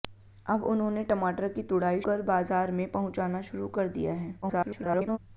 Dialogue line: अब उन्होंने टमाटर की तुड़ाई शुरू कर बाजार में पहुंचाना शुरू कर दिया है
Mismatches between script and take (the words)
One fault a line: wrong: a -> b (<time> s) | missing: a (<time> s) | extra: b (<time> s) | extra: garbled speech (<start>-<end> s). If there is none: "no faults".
missing: शुरू (2.0 s)
extra: garbled speech (4.4-5.2 s)